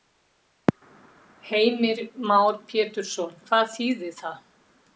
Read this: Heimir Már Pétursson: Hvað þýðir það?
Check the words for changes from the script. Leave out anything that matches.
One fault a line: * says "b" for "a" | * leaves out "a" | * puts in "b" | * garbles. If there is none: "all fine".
all fine